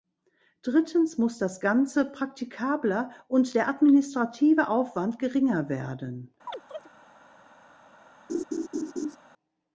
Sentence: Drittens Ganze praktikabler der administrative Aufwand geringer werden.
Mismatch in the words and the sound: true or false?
true